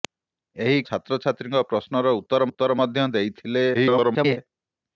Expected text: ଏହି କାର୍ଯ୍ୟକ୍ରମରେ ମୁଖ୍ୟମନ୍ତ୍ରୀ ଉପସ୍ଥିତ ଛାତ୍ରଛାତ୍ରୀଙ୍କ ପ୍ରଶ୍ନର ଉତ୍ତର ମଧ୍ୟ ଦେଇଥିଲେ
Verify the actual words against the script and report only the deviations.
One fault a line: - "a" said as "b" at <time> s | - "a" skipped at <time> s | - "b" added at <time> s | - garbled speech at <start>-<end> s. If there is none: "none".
- "କାର୍ଯ୍ୟକ୍ରମରେ ମୁଖ୍ୟମନ୍ତ୍ରୀ ଉପସ୍ଥିତ" skipped at 0.8 s
- "ଉତ୍ତର" added at 2.5 s
- garbled speech at 3.7-4.4 s